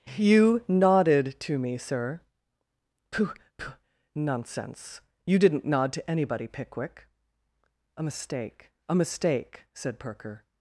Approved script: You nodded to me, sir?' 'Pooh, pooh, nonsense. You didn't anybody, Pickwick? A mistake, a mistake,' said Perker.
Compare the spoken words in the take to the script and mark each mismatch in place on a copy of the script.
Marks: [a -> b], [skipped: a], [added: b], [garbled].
You nodded to me, sir?' 'Pooh, pooh, nonsense. You didn't [added: nod to] anybody, Pickwick? A mistake, a mistake,' said Perker.